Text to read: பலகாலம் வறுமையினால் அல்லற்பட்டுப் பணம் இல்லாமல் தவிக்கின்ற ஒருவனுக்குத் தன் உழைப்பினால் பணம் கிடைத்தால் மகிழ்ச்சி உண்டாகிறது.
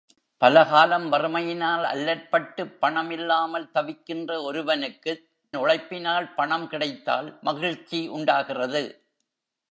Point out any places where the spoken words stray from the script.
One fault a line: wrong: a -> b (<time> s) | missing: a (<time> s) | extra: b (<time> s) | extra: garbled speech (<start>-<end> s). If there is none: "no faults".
missing: தன் (5.2 s)